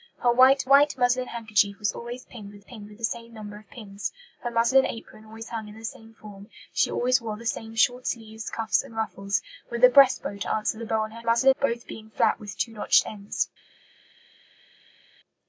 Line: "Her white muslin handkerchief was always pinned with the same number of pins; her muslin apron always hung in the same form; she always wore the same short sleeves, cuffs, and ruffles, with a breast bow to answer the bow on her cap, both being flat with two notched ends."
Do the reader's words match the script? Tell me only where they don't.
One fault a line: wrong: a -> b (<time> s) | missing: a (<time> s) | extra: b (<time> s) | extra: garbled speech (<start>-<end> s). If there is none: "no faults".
extra: white (0.6 s)
extra: pinned with (2.6 s)
wrong: cap -> muslin (11.2 s)